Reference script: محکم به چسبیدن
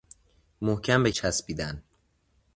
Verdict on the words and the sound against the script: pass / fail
pass